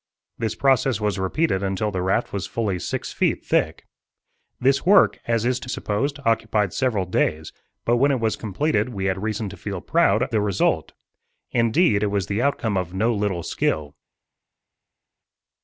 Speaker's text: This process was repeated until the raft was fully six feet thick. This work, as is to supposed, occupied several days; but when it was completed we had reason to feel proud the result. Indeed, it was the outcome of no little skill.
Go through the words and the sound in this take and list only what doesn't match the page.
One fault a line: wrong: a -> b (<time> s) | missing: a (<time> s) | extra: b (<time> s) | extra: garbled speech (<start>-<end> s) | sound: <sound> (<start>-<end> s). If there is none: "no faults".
no faults